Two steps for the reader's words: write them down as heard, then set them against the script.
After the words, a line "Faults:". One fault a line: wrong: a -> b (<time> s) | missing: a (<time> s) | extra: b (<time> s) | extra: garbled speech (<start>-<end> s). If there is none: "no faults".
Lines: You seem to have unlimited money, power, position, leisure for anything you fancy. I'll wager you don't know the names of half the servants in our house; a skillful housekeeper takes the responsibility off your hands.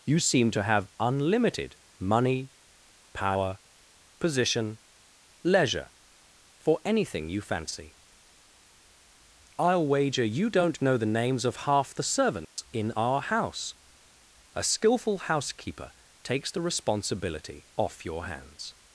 You seem to have unlimited money, power, position, leisure for anything you fancy. I'll wager you don't know the names of half the servants in our house; a skillful housekeeper takes the responsibility off your hands.
Faults:
no faults